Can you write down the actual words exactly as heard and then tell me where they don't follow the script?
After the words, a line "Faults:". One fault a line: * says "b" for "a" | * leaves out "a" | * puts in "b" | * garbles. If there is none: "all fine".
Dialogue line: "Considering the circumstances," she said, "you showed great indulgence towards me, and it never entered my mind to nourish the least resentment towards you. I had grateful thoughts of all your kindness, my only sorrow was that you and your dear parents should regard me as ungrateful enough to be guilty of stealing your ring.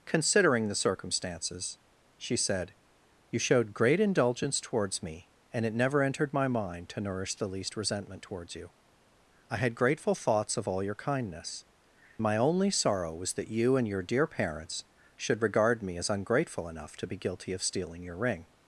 "Considering the circumstances," she said, "you showed great indulgence towards me, and it never entered my mind to nourish the least resentment towards you. I had grateful thoughts of all your kindness, my only sorrow was that you and your dear parents should regard me as ungrateful enough to be guilty of stealing your ring.
Faults:
all fine